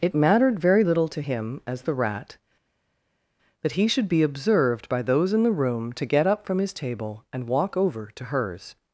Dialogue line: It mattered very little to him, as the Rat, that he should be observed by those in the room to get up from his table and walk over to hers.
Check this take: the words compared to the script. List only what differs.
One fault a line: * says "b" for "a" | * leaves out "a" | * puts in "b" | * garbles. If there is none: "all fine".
all fine